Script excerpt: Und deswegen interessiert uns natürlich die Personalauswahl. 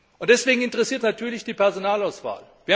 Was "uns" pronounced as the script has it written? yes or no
no